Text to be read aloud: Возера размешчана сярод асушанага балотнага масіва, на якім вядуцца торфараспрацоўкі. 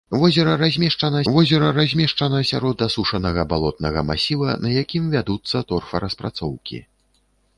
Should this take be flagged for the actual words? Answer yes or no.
yes